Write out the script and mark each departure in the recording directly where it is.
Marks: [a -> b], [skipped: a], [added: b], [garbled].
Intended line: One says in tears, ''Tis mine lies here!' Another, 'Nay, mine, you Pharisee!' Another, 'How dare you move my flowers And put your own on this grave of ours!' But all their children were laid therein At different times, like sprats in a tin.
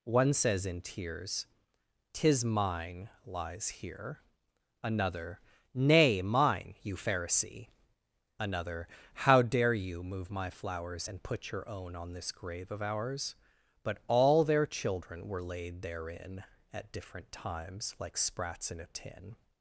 One says in tears, ''Tis mine lies here!' Another, 'Nay, mine, you Pharisee!' Another, 'How dare you move my flowers And put your own on this grave of ours!' But all their children were laid therein At different times, like sprats in a tin.